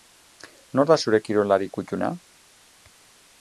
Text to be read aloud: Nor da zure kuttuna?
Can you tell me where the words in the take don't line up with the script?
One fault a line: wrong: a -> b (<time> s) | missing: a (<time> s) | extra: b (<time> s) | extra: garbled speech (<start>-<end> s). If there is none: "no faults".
extra: kirolari (1.3 s)